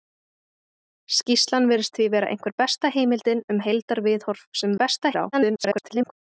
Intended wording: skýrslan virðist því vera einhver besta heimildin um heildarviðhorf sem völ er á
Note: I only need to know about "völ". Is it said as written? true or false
false